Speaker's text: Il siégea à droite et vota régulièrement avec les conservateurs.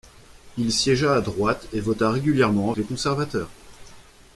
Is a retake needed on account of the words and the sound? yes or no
yes